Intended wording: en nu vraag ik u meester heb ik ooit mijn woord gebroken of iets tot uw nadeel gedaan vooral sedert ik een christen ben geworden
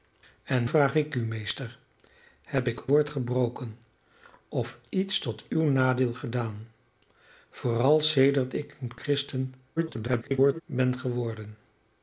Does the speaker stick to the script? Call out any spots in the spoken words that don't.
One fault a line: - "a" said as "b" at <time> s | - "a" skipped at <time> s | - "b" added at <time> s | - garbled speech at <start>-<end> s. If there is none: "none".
- "nu" skipped at 0.7 s
- "ooit mijn" skipped at 2.8 s
- garbled speech at 9.8-10.6 s